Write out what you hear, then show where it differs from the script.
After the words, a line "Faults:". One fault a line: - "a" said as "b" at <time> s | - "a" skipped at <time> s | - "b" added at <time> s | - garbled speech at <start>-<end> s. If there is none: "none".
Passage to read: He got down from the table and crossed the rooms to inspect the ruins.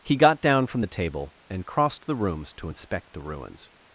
He got down from the table and crossed the rooms to inspect the ruins.
Faults:
none